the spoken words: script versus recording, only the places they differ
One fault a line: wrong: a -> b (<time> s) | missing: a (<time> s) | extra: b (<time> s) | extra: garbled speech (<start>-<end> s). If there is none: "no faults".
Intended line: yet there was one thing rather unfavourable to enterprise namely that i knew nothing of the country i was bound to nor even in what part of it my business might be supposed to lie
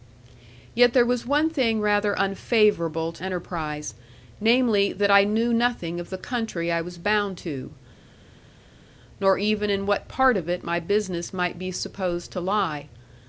no faults